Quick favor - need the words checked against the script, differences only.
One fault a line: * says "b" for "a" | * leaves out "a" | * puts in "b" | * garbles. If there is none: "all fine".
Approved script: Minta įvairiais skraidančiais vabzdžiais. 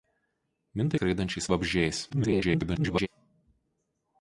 * leaves out "įvairiais"
* garbles